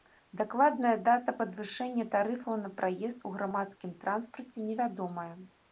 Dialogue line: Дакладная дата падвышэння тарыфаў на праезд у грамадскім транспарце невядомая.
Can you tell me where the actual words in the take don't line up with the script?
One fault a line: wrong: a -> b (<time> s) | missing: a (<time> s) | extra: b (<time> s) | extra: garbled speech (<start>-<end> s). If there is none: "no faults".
no faults